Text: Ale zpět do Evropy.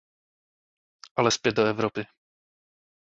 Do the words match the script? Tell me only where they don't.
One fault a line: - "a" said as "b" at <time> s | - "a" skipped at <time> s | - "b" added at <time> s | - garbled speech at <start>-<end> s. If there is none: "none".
none